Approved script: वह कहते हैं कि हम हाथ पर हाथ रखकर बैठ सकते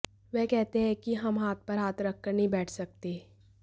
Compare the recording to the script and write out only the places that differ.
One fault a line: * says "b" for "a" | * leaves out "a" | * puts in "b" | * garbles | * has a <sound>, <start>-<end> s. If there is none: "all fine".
* puts in "नहीं"